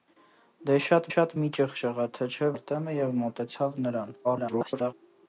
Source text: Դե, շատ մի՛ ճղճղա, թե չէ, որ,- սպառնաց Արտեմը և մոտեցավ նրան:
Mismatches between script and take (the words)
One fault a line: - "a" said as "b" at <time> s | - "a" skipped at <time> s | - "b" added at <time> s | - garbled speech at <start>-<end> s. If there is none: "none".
- "շատ" added at 1.1 s
- "որ սպառնաց" skipped at 2.5 s
- garbled speech at 4.2-4.9 s